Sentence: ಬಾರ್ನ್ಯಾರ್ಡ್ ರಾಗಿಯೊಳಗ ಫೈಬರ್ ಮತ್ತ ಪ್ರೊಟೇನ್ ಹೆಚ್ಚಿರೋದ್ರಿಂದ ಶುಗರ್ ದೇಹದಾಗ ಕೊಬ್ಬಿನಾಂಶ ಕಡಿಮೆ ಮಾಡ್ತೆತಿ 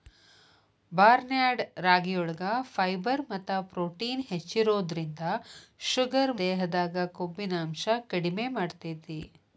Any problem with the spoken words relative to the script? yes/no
no